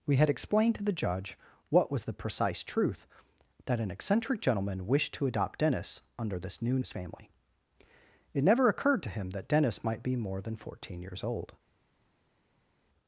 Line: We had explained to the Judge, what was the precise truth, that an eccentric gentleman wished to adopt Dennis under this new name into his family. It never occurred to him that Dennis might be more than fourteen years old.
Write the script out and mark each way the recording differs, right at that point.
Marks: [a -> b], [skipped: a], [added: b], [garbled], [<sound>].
We had explained to the Judge, what was the precise truth, that an eccentric gentleman wished to adopt Dennis under this new [skipped: name into] his family. It never occurred to him that Dennis might be more than fourteen years old.